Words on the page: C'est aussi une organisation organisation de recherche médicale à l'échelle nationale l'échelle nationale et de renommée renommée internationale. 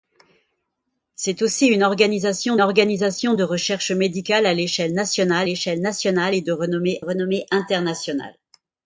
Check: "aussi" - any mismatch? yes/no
no